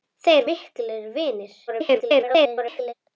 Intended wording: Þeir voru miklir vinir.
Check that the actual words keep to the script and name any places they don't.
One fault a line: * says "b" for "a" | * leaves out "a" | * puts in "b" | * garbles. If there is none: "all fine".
* leaves out "voru"
* garbles